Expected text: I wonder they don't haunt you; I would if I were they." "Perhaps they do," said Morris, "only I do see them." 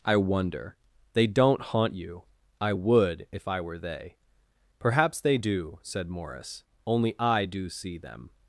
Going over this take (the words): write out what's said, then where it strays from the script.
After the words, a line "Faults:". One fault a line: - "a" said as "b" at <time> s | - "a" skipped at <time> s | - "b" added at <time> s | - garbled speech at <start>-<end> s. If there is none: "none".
I wonder they don't haunt you; I would if I were they." "Perhaps they do," said Morris, "only I do see them."
Faults:
none